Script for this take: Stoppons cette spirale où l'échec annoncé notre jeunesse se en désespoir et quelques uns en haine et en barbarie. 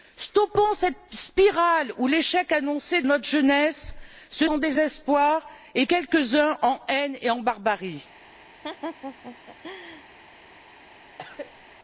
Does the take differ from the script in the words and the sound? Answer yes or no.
yes